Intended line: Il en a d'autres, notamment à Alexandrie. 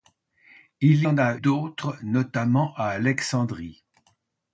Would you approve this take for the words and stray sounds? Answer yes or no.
yes